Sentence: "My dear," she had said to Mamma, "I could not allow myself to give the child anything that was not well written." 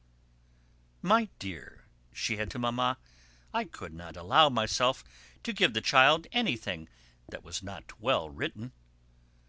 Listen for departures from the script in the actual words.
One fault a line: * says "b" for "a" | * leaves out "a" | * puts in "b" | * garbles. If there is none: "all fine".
* leaves out "said"